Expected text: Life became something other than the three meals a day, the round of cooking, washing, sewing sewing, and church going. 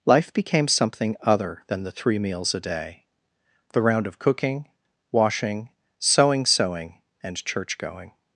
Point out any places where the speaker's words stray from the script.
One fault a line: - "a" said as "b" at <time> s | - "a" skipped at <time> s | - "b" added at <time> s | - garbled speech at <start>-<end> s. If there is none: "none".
none